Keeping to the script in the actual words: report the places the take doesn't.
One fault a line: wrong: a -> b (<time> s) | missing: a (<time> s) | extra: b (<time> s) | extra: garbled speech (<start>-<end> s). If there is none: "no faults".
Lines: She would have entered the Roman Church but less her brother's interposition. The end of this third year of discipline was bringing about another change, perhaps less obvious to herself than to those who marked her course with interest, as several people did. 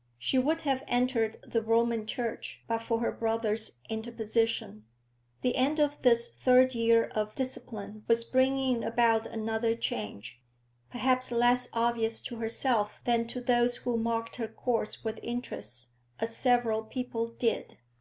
wrong: less -> for (2.8 s)